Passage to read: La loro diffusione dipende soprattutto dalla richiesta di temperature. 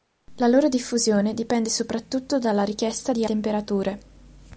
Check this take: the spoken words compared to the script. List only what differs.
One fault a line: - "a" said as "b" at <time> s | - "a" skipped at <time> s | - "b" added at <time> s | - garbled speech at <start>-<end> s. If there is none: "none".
none